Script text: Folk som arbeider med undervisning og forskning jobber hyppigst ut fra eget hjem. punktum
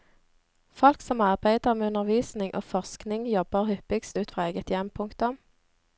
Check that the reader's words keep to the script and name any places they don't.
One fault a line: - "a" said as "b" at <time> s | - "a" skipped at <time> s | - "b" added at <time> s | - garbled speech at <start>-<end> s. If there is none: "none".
none